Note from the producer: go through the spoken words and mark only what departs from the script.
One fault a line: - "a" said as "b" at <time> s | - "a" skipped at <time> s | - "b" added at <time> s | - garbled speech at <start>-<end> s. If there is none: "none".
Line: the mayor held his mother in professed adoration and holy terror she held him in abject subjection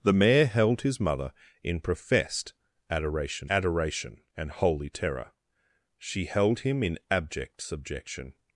- "adoration" added at 3.5 s